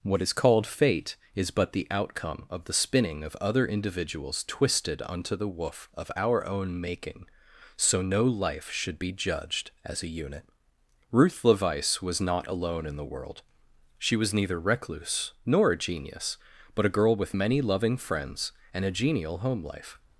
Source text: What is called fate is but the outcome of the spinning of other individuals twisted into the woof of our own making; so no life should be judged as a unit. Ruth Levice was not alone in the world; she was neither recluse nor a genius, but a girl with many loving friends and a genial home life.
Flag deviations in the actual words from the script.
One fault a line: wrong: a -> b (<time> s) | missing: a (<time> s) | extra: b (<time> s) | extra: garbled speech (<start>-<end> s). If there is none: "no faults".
wrong: into -> unto (5.0 s)